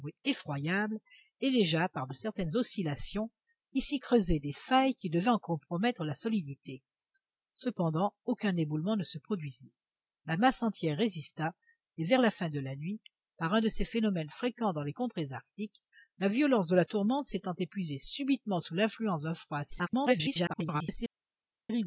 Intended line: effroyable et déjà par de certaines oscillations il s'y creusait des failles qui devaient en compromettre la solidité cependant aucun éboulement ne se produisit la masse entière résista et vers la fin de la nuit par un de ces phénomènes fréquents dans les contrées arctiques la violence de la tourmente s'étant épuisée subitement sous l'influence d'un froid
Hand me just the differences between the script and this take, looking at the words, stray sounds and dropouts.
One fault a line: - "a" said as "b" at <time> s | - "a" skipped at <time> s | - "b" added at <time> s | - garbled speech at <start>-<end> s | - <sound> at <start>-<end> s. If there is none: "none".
- garbled speech at 19.7-21.0 s